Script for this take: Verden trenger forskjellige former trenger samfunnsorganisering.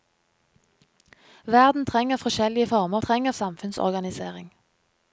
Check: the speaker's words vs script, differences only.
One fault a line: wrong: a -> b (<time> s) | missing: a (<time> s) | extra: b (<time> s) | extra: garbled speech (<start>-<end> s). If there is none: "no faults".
no faults